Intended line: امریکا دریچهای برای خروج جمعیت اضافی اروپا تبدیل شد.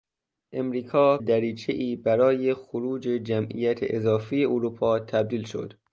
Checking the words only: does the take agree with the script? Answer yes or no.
yes